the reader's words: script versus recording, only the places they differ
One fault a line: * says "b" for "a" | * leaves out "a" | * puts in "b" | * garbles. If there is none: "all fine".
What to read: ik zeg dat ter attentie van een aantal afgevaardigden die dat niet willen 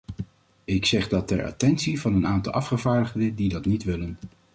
all fine